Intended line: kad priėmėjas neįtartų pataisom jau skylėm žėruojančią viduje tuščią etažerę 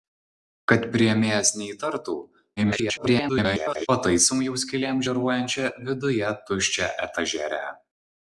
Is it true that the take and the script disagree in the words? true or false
true